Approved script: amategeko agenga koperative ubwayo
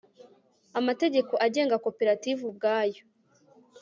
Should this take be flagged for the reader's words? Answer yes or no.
no